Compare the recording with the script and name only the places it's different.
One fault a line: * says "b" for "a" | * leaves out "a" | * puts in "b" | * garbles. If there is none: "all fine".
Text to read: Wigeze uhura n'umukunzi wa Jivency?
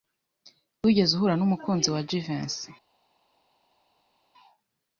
all fine